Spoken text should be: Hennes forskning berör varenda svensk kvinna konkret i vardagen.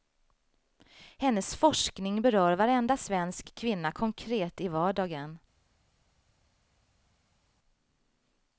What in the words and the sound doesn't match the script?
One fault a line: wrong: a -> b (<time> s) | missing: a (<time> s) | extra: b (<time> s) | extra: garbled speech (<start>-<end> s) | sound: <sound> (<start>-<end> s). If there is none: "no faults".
no faults